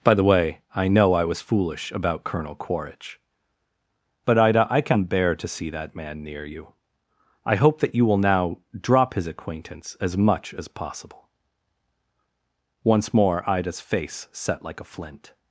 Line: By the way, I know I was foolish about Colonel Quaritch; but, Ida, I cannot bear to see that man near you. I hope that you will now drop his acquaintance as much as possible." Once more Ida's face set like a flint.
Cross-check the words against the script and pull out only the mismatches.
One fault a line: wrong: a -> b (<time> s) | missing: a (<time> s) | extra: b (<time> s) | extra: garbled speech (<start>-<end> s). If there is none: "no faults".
wrong: cannot -> can (4.8 s)